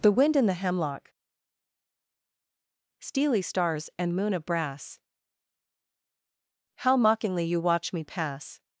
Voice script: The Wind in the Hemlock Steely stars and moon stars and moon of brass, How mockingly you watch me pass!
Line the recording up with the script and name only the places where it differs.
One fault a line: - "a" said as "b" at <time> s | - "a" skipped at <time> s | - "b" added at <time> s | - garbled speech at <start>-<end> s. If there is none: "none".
- "stars and moon" skipped at 4.3 s